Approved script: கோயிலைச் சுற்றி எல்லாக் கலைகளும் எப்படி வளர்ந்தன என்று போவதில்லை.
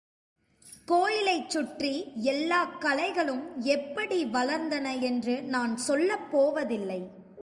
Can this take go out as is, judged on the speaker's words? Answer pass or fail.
fail